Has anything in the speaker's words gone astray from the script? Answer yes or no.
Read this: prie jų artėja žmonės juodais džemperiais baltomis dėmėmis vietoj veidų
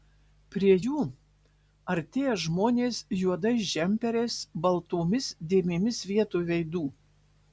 no